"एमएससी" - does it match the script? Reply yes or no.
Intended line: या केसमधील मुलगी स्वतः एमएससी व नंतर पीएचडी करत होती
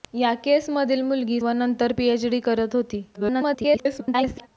no